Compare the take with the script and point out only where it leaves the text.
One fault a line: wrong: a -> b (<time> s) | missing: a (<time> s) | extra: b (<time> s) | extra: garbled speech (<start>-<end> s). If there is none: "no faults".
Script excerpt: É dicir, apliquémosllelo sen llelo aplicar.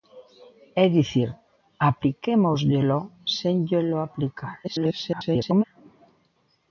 extra: garbled speech (4.6-5.6 s)